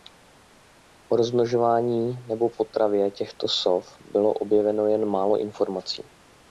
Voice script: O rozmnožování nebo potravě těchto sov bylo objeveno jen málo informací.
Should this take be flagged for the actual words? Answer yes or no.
no